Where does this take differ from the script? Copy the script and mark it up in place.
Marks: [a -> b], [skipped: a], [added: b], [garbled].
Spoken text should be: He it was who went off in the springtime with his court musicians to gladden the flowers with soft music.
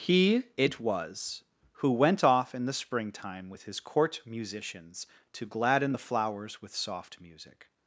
He it was who went off in the springtime with his court musicians to gladden the flowers with soft music.